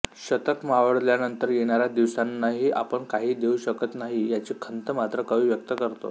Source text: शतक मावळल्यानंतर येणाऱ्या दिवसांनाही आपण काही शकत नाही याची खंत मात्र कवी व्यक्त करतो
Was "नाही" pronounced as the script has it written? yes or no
yes